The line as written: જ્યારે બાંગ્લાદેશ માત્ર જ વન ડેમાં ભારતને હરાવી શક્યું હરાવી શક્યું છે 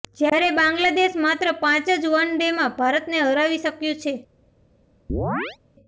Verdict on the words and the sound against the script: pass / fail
fail